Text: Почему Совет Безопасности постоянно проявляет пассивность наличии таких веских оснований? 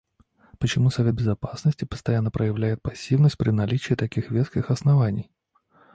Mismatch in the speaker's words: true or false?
true